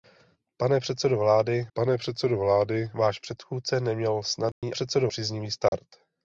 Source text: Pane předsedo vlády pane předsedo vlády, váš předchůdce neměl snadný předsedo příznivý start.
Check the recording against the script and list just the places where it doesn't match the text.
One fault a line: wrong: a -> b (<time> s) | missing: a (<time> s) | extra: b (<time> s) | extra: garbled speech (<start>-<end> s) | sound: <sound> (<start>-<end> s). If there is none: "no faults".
sound: dropout (4.5-4.6 s)
sound: dropout (5.7-5.7 s)